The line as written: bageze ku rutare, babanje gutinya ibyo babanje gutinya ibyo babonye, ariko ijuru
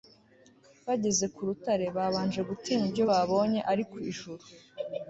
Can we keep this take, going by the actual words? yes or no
no